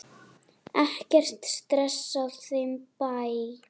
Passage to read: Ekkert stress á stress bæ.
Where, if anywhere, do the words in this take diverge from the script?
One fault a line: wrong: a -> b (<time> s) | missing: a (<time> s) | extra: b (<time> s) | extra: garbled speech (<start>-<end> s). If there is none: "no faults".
wrong: stress -> þeim (2.5 s)